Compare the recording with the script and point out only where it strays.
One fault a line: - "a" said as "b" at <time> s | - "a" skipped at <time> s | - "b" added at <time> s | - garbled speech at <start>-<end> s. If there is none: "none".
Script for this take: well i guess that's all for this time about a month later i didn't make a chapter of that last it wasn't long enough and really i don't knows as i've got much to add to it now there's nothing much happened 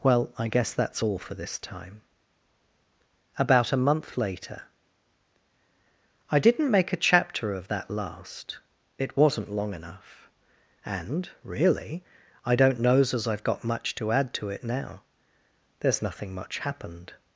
none